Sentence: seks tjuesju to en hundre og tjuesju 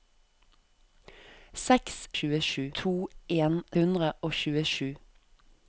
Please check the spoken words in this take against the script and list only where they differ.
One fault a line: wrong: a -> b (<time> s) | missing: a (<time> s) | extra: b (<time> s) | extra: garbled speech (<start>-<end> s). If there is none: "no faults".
no faults